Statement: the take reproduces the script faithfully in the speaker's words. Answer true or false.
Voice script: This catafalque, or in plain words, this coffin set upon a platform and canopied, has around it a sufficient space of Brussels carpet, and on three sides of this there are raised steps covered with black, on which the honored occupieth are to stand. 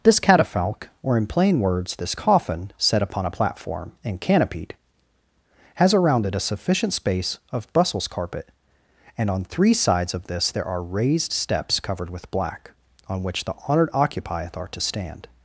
true